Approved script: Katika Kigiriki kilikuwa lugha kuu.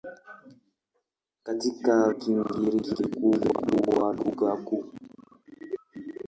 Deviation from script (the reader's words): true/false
false